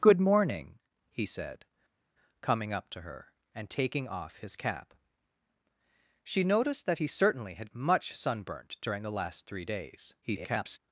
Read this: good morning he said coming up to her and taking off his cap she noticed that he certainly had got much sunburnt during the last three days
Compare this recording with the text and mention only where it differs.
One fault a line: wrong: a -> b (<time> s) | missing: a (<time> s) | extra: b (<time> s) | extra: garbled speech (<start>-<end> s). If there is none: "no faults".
missing: got (7.7 s)
extra: garbled speech (10.2-10.8 s)